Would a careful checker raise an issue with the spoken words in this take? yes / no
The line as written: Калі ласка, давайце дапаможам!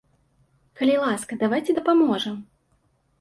no